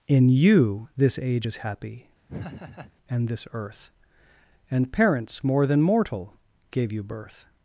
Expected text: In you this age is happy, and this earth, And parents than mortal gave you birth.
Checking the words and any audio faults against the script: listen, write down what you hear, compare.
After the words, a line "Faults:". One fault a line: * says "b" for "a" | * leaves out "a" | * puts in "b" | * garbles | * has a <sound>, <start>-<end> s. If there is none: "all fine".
In you this age is happy, and this earth, And parents more than mortal gave you birth.
Faults:
* has a laugh, 2.3-2.9 s
* puts in "more"